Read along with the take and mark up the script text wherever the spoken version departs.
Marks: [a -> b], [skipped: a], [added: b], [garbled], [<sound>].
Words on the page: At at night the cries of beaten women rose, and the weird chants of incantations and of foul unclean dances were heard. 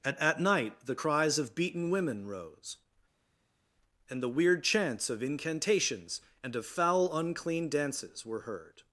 At at night the cries of beaten women rose, and the weird chants of incantations and of foul unclean dances were heard.